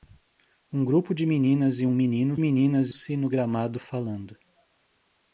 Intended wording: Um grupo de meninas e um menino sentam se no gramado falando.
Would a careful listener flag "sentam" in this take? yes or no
yes